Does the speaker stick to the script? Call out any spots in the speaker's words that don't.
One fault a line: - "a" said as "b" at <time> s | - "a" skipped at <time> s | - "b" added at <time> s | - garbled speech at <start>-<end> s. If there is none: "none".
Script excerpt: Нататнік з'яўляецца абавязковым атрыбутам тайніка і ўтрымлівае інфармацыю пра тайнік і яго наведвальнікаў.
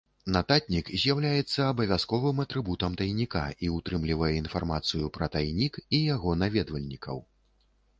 none